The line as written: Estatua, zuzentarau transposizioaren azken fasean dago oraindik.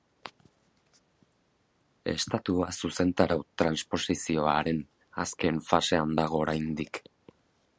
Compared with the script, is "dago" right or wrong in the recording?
right